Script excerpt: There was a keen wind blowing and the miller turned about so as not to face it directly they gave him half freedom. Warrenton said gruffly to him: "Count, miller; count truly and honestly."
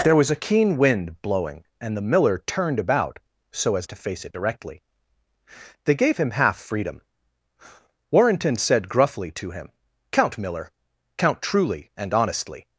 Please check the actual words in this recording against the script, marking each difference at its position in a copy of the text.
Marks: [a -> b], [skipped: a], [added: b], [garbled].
There was a keen wind blowing and the miller turned about so as [skipped: not] to face it directly they gave him half freedom. Warrenton said gruffly to him: "Count, miller; count truly and honestly."